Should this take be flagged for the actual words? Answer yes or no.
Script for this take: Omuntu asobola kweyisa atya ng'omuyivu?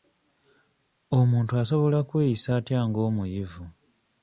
no